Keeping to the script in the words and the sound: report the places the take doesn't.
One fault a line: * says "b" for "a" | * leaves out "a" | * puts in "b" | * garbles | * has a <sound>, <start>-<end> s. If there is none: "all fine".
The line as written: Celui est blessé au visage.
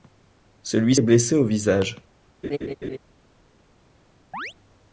* has a laugh, 2.4-3.0 s
* has a chirp, 4.3-4.5 s